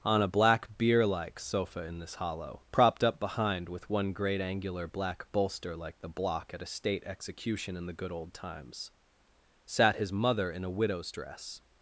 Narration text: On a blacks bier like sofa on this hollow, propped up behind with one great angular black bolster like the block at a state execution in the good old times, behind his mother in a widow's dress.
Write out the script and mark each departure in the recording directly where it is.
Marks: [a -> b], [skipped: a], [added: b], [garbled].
On a [blacks -> black] bier like sofa [on -> in] this hollow, propped up behind with one great angular black bolster like the block at a state execution in the good old times, [behind -> sat] his mother in a widow's dress.